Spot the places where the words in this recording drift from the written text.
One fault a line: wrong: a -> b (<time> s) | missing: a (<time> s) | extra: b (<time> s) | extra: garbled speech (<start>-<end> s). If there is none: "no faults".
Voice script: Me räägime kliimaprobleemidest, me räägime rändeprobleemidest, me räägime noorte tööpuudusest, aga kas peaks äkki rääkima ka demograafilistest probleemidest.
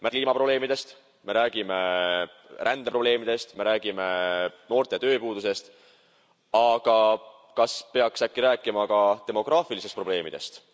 missing: räägime (0.1 s)